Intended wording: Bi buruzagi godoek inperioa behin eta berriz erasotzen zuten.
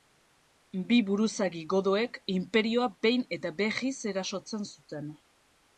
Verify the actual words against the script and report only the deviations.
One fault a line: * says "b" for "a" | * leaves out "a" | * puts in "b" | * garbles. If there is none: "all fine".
all fine